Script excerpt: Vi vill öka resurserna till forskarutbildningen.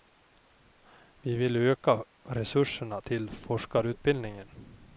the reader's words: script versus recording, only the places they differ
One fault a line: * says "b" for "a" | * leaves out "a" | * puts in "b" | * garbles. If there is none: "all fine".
all fine